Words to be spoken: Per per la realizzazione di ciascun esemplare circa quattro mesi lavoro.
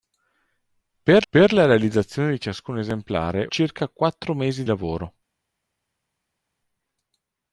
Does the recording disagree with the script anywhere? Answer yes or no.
no